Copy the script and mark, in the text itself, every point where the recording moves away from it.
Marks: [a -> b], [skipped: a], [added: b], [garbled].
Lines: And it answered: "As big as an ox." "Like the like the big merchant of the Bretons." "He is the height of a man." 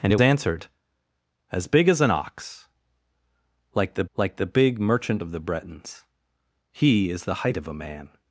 And it answered: "As big as an ox." "Like the like the big merchant of the Bretons." "He is the height of a man."